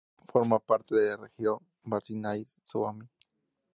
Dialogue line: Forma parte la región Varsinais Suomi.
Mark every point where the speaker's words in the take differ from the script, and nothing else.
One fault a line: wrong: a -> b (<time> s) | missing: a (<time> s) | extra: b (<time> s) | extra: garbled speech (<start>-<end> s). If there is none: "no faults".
extra: de (0.9 s)